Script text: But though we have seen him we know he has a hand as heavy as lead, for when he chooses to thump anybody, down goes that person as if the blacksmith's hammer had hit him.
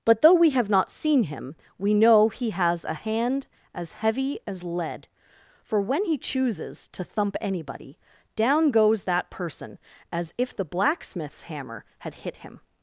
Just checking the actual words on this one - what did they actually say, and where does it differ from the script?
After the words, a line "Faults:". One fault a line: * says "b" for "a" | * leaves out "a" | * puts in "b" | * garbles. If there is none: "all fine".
But though we have not seen him we know he has a hand as heavy as lead, for when he chooses to thump anybody, down goes that person as if the blacksmith's hammer had hit him.
Faults:
* puts in "not"